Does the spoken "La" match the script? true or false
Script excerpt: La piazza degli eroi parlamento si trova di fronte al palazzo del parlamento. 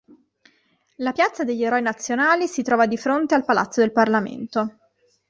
true